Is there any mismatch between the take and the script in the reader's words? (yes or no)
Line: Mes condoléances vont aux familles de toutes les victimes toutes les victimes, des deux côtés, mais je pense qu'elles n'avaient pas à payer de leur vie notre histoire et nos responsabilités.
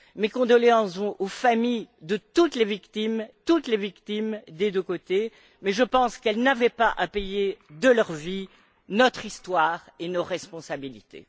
no